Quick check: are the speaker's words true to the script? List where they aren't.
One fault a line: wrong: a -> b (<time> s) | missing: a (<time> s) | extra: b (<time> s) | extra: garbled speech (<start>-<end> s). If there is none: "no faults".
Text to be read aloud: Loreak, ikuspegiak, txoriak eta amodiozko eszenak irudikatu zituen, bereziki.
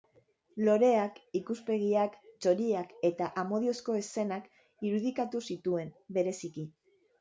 no faults